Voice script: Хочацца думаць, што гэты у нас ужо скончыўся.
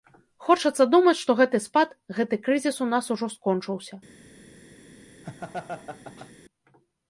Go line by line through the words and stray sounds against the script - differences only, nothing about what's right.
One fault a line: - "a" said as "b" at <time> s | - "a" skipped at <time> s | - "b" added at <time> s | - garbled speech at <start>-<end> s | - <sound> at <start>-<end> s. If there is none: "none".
- "спад гэты крызіс" added at 1.6 s
- laugh at 5.2-6.3 s